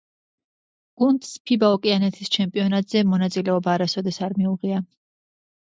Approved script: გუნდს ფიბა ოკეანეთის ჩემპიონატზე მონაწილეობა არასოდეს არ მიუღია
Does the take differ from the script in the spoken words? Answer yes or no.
no